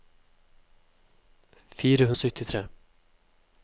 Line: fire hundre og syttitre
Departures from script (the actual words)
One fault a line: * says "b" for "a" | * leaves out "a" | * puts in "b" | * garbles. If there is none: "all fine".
* leaves out "hundre"